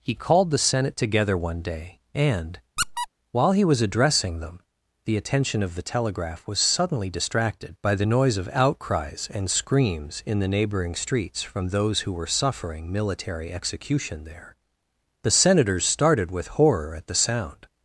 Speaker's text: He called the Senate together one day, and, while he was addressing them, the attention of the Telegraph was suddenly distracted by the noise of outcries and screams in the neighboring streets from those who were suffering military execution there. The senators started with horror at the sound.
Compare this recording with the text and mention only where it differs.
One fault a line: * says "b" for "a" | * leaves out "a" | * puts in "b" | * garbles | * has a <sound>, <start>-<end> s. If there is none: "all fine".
* has a squeak, 2.8-3.1 s